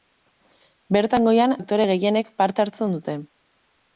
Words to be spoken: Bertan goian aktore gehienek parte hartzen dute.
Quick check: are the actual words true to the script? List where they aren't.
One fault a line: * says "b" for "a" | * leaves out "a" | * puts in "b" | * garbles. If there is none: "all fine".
all fine